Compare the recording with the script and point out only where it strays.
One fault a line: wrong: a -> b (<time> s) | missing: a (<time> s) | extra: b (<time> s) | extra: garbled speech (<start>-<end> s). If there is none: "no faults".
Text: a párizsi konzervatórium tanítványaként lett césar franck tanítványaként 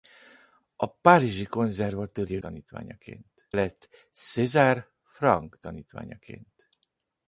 no faults